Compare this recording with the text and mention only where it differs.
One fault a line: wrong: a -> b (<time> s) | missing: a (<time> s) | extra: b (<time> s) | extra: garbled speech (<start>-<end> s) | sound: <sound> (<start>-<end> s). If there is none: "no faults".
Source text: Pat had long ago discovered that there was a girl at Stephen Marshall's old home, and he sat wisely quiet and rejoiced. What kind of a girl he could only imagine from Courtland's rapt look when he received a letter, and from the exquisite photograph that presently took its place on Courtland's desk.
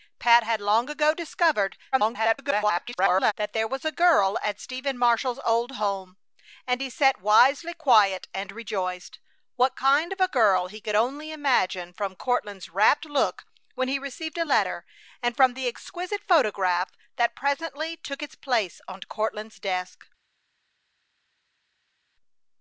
extra: garbled speech (1.9-3.3 s)